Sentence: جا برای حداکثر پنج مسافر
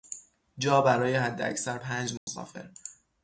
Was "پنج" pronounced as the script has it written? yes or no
yes